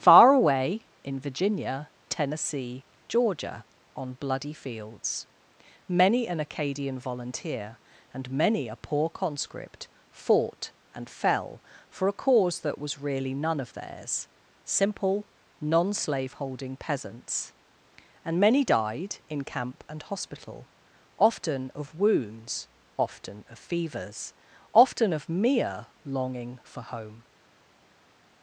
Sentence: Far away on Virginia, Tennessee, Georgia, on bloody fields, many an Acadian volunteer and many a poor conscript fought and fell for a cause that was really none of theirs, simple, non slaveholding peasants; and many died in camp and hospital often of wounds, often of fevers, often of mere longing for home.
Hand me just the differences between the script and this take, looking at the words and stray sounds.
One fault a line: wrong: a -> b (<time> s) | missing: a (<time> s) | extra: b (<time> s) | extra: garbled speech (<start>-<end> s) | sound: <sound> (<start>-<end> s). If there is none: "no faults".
wrong: on -> in (1.0 s)